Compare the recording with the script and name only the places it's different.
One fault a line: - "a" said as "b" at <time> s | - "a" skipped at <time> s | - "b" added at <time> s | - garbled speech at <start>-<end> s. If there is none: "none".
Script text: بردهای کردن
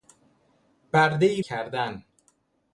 none